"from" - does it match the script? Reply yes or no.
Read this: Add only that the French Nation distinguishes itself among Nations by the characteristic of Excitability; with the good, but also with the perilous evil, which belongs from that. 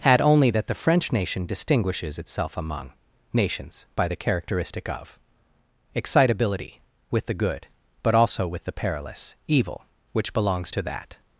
no